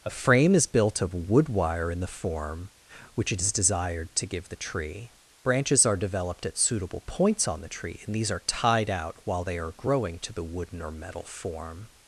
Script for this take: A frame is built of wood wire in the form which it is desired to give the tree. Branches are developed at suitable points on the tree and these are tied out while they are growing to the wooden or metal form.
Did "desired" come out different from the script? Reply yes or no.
no